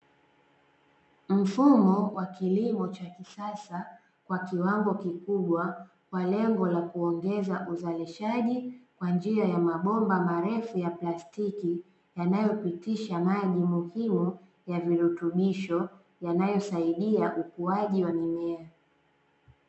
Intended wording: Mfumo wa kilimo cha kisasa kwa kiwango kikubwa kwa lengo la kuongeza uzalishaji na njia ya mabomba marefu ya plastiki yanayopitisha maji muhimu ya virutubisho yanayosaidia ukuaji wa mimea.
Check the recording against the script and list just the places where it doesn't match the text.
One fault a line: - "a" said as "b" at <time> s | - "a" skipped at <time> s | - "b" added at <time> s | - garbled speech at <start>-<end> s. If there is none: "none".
- "na" said as "kwa" at 9.0 s